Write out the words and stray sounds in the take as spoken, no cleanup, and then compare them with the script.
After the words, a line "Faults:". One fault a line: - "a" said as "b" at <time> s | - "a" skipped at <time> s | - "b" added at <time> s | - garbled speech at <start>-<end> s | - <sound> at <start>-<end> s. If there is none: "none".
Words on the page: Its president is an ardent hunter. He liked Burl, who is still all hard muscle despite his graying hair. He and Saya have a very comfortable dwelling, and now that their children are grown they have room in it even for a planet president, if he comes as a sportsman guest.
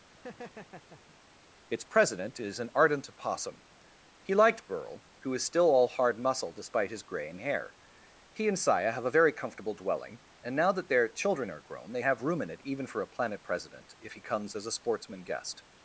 Its president is an ardent opossum. He liked Burl, who is still all hard muscle despite his graying hair. He and Saya have a very comfortable dwelling, and now that their children are grown they have room in it even for a planet president, if he comes as a sportsman guest.
Faults:
- laugh at 0.1-1.2 s
- "hunter" said as "opossum" at 3.1 s